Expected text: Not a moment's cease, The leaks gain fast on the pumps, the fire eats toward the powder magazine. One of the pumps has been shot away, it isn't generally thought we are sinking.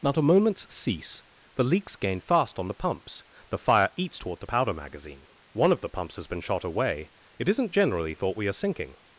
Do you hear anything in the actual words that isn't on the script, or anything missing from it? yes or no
no